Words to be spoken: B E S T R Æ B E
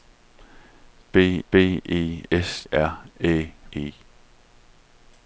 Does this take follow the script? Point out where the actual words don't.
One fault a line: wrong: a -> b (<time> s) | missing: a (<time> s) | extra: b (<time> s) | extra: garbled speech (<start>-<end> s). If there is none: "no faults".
extra: b (1.5 s)
missing: T (2.6 s)
missing: B (3.5 s)